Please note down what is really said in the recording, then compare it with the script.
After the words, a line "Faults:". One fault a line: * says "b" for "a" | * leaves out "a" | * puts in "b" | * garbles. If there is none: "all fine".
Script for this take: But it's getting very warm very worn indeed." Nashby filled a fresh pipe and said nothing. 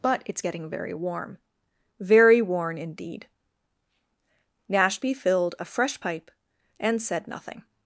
But it's getting very warm very worn indeed." Nashby filled a fresh pipe and said nothing.
Faults:
all fine